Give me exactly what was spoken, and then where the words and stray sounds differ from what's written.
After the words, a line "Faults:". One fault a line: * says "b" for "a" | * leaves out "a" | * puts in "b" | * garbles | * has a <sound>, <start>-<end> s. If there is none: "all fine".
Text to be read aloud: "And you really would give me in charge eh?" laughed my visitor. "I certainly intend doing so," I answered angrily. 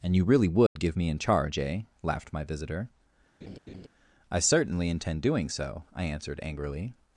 "And you really would give me in charge eh?" laughed my visitor. "I certainly intend doing so," I answered angrily.
Faults:
* has a dropout, 0.7-0.8 s
* has a laugh, 3.4-3.9 s